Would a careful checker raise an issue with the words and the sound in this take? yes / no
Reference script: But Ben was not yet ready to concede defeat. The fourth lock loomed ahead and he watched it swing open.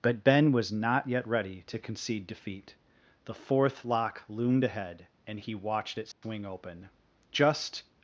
yes